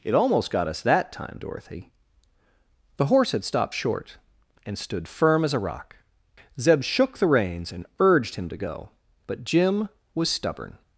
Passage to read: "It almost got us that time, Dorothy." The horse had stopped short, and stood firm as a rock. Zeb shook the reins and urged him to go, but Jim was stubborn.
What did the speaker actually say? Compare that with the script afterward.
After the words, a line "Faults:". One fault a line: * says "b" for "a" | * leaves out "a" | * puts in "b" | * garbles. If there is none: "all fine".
"It almost got us that time, Dorothy." The horse had stopped short, and stood firm as a rock. Zeb shook the reins and urged him to go, but Jim was stubborn.
Faults:
all fine